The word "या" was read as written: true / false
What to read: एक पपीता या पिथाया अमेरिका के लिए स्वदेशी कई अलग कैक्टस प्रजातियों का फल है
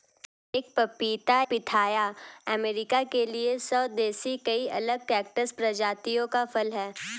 false